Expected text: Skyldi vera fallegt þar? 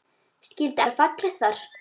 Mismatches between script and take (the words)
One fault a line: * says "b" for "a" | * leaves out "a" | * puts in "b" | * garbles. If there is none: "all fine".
all fine